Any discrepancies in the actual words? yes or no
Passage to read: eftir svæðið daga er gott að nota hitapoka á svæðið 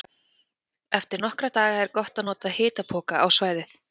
yes